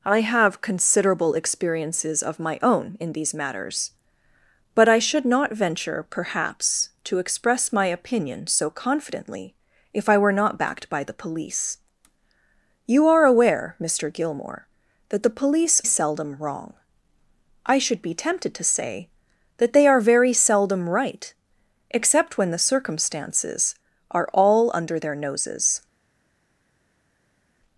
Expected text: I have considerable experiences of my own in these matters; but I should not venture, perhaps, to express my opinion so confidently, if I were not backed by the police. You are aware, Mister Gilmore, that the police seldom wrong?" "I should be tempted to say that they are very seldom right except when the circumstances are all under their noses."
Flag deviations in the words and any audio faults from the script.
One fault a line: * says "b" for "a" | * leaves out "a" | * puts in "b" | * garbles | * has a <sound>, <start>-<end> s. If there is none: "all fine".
all fine